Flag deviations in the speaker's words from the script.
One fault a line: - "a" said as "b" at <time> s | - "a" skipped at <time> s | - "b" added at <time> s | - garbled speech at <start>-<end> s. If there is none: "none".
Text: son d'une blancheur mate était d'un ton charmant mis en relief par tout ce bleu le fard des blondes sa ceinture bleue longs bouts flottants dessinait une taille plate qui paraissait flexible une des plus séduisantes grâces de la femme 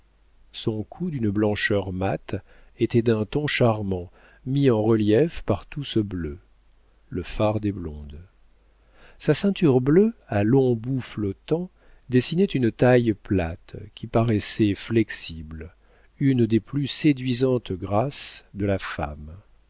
- "cou" added at 0.8 s
- "à" added at 10.3 s